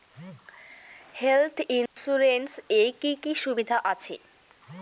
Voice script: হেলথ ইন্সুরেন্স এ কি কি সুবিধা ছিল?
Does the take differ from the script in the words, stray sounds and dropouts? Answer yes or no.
yes